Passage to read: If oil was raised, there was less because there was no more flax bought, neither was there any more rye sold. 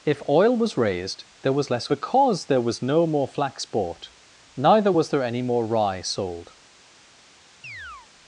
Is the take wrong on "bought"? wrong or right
right